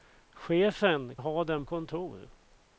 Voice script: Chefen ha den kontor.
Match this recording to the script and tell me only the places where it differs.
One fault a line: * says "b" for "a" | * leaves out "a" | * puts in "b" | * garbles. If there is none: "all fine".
all fine